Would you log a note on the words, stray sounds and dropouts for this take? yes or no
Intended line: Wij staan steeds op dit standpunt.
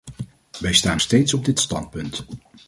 no